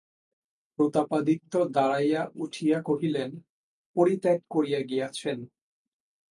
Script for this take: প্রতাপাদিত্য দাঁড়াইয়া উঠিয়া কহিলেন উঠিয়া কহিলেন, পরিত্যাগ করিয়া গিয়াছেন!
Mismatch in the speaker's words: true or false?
true